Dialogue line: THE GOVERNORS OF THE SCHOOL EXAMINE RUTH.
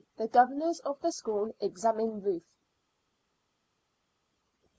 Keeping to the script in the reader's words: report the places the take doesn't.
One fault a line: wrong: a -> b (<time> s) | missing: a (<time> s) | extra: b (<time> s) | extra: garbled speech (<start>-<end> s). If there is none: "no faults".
no faults